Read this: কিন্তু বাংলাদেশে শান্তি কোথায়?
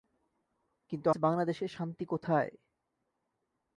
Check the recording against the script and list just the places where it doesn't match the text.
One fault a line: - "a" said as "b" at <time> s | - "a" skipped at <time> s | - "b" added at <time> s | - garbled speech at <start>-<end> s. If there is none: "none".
none